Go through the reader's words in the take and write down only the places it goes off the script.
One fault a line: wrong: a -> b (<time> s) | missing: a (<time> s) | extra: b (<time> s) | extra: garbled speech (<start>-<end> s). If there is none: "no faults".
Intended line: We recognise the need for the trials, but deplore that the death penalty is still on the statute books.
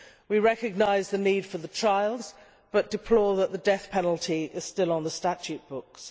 no faults